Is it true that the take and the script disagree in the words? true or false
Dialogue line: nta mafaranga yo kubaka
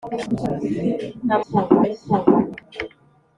true